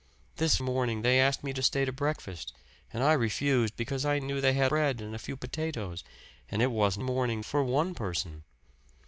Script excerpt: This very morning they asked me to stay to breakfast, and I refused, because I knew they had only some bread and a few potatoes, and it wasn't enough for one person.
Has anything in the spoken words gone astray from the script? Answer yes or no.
yes